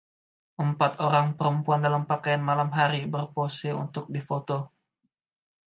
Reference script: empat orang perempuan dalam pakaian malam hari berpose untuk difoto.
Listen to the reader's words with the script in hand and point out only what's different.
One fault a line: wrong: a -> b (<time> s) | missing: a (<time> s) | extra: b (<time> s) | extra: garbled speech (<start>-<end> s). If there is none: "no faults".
no faults